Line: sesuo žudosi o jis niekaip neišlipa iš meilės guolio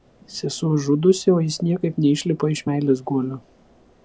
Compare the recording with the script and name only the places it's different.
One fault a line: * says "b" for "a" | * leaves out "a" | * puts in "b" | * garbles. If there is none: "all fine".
all fine